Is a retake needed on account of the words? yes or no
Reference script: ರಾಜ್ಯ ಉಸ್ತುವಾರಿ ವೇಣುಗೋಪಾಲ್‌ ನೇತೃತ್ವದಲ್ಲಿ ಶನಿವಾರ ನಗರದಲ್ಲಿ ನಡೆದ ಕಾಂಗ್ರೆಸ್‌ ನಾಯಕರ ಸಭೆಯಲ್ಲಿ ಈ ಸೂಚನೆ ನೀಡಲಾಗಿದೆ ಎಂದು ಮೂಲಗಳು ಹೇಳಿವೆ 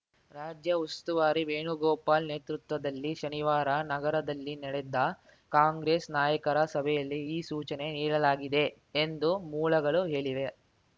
no